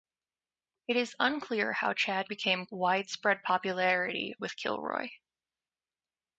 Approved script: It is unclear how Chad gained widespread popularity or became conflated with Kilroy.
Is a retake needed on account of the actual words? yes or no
yes